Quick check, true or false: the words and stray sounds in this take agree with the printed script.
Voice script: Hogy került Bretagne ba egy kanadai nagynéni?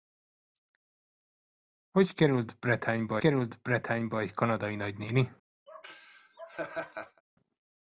false